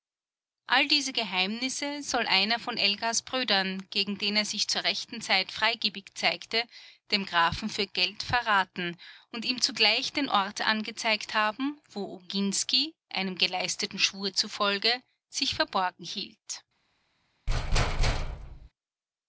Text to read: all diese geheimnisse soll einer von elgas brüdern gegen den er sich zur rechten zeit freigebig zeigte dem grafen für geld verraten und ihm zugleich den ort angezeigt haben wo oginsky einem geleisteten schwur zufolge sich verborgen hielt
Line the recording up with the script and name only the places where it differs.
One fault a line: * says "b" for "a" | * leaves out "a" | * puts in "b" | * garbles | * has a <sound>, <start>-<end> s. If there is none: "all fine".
* has a thud, 17.5-18.7 s